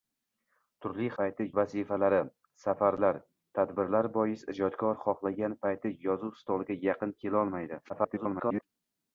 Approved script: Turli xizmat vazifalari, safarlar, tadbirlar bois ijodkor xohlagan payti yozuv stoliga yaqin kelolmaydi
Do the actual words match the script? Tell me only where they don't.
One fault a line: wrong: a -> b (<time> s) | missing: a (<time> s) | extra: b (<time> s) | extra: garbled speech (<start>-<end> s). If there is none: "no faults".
wrong: xizmat -> payti (1.2 s)
extra: garbled speech (7.9-8.6 s)